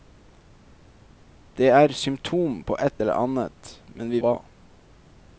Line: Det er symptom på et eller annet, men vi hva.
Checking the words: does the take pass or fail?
pass